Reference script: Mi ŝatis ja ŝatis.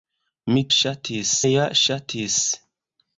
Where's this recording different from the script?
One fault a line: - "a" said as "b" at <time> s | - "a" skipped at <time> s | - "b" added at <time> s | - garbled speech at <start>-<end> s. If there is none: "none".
none